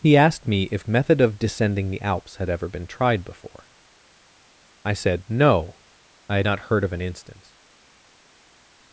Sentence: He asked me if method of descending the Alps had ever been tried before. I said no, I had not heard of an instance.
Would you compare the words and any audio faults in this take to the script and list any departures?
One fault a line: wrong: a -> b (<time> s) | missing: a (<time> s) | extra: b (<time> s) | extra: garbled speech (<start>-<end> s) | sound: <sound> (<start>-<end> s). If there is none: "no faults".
no faults